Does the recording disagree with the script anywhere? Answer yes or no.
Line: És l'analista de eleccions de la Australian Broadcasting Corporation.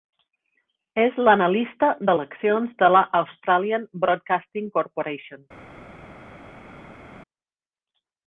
no